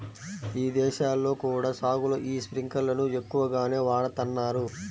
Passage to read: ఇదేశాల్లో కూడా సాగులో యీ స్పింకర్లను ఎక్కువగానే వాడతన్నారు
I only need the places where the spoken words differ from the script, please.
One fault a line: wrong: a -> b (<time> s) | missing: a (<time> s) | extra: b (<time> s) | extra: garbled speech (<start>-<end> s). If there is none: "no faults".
no faults